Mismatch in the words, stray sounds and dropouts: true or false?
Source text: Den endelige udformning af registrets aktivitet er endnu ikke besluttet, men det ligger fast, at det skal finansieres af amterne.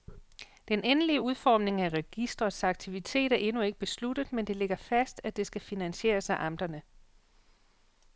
false